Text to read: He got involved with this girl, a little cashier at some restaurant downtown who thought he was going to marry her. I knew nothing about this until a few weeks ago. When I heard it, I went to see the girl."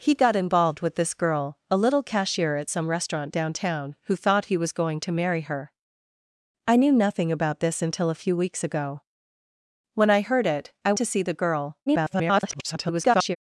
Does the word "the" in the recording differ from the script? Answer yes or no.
no